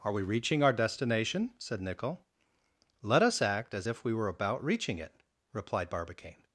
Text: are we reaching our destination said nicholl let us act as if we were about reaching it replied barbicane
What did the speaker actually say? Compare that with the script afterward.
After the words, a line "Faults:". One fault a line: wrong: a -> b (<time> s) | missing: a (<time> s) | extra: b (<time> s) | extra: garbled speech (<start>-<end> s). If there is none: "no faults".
are we reaching our destination said nicholl let us act as if we were about reaching it replied barbicane
Faults:
no faults